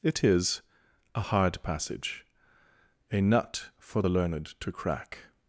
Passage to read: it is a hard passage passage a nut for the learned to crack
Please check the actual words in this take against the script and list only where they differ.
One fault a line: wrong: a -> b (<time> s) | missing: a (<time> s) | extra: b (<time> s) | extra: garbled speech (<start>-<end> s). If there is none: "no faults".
missing: passage (2.2 s)